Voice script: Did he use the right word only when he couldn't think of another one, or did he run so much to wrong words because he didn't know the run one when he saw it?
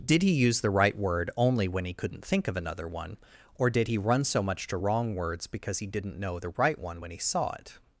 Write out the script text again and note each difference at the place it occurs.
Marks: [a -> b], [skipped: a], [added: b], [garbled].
Did he use the right word only when he couldn't think of another one, or did he run so much to wrong words because he didn't know the [run -> right] one when he saw it?